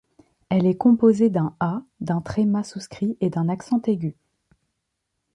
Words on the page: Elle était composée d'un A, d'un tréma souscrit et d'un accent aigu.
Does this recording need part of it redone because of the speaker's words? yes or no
yes